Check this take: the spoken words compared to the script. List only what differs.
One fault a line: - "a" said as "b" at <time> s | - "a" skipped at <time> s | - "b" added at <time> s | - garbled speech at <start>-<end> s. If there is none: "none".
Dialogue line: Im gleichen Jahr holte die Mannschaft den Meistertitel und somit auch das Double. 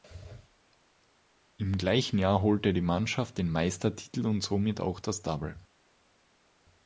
none